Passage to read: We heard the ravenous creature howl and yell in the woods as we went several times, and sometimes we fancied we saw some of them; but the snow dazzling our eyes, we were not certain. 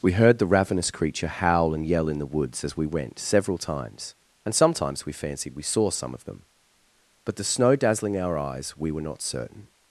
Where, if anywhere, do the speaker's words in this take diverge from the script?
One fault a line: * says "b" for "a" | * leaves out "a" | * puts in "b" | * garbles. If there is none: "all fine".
all fine